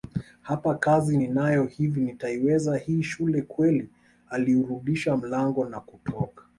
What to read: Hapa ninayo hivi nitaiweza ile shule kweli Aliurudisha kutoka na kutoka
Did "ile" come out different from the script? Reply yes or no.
yes